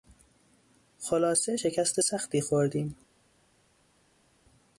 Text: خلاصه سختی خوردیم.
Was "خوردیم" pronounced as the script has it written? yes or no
yes